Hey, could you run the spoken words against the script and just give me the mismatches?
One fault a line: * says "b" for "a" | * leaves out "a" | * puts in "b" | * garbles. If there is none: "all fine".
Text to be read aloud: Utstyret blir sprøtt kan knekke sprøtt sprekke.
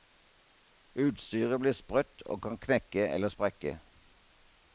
* puts in "og"
* says "eller" for "sprøtt"